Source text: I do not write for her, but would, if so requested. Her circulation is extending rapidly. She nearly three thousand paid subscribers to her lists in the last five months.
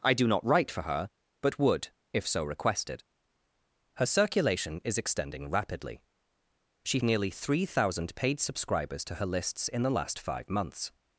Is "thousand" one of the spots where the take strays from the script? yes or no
no